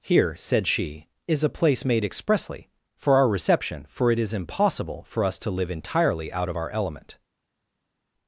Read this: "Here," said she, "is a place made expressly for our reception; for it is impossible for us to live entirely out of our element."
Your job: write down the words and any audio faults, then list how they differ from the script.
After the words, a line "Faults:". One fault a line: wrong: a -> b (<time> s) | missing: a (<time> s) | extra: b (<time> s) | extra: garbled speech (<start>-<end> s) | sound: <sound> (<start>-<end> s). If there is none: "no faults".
"Here," said she, "is a place made expressly for our reception; for it is impossible for us to live entirely out of our element."
Faults:
no faults